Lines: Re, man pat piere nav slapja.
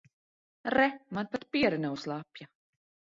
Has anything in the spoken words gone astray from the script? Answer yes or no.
no